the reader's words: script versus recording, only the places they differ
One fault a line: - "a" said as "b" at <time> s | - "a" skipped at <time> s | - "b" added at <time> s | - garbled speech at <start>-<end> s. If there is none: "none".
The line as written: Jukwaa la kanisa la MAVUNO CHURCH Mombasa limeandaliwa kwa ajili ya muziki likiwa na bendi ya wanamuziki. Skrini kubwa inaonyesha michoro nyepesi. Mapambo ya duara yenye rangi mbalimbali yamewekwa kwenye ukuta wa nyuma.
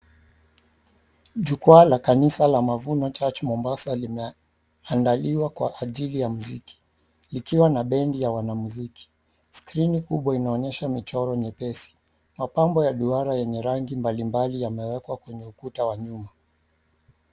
none